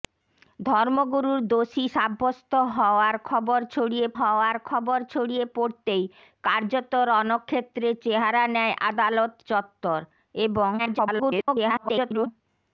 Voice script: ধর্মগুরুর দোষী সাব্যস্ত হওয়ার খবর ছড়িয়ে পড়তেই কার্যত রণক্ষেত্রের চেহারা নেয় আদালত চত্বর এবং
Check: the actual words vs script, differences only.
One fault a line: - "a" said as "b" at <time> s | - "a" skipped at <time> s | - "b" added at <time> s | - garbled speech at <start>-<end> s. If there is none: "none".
- "হওয়ার খবর ছড়িয়ে" added at 4.2 s
- garbled speech at 10.8-12.3 s